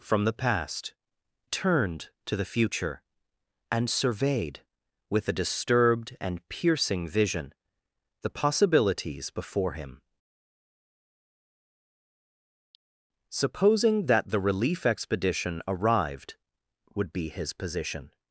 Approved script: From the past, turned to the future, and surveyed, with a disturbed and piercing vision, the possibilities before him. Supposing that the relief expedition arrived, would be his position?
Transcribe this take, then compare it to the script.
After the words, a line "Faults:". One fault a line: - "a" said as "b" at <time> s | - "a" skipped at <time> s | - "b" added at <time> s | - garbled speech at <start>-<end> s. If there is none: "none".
From the past, turned to the future, and surveyed, with a disturbed and piercing vision, the possibilities before him. Supposing that the relief expedition arrived, would be his position?
Faults:
none